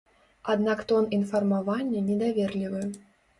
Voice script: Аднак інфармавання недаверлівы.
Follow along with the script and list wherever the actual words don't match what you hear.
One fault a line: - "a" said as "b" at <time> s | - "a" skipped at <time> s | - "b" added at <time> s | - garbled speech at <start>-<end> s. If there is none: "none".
- "тон" added at 0.9 s